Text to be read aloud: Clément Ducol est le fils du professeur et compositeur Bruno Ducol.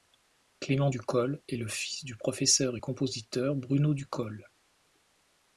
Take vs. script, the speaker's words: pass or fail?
pass